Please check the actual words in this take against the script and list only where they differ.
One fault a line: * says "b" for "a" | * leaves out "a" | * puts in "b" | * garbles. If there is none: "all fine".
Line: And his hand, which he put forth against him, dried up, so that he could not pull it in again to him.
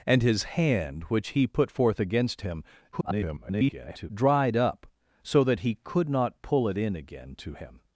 * garbles